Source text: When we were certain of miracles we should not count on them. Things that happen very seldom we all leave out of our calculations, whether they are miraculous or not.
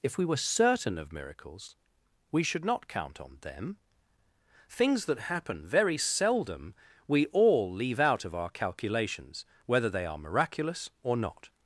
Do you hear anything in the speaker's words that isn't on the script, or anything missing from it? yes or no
yes